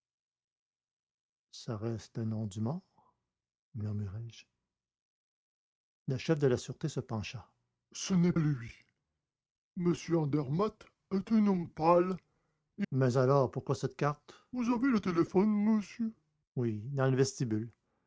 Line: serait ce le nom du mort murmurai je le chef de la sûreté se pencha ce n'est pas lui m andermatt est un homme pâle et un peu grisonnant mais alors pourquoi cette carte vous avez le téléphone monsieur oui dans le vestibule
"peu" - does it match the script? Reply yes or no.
no